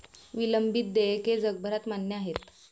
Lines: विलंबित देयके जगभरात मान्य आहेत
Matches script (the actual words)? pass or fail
pass